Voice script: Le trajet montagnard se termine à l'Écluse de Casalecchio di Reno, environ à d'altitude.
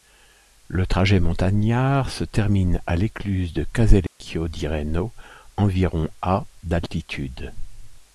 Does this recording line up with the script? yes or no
yes